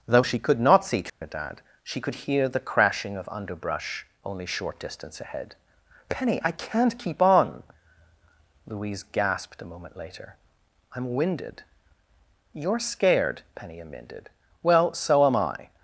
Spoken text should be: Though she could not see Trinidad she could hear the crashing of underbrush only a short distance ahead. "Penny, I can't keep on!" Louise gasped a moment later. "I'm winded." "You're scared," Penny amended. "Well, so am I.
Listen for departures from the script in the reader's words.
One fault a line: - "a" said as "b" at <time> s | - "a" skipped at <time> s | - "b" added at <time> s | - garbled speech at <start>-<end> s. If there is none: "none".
- "a" skipped at 4.5 s